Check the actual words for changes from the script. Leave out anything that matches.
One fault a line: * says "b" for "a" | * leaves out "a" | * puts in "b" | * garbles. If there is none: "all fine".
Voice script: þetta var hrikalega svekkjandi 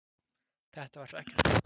* leaves out "hrikalega"